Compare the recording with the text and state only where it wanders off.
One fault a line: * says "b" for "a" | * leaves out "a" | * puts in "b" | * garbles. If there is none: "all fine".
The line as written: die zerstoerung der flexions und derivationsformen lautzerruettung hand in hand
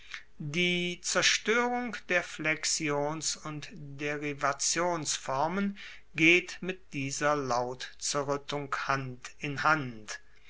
* puts in "geht mit dieser"